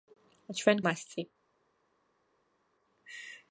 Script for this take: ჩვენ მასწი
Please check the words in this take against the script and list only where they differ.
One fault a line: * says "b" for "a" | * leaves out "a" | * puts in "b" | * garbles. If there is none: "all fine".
all fine